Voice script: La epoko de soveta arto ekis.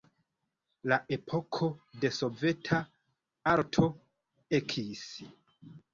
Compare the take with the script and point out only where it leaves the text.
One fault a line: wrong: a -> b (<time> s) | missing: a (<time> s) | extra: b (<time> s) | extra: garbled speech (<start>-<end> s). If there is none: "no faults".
no faults